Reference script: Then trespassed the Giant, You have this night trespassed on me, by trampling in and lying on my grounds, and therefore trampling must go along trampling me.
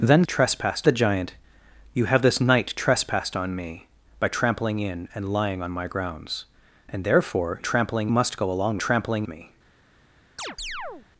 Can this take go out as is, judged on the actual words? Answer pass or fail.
pass